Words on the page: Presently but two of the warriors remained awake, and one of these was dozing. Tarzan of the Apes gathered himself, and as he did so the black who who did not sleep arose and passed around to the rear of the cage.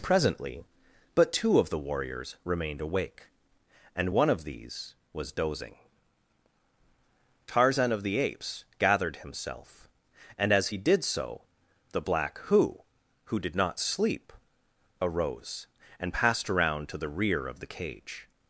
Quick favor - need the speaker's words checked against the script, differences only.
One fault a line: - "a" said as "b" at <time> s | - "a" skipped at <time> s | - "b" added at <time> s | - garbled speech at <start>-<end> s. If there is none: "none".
none